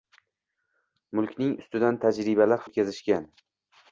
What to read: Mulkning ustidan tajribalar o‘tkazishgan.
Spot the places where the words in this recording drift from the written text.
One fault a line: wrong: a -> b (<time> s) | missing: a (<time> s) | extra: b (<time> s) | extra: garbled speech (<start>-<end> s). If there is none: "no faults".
no faults